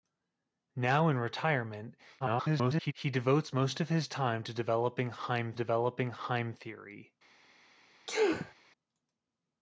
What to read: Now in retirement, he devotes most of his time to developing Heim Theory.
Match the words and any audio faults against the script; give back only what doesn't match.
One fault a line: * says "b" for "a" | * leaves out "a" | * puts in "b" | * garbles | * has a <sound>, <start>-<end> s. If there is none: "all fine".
* garbles
* puts in "developing Heim"
* has a sneeze, 8.1-8.5 s